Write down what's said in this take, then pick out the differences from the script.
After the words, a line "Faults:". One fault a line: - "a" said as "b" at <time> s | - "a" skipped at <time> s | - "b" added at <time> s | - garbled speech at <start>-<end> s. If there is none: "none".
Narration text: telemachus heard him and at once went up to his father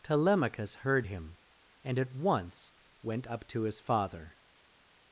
telemachus heard him and at once went up to his father
Faults:
none